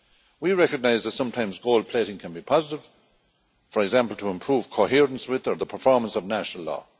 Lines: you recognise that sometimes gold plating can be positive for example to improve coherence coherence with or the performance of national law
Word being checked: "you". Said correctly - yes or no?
no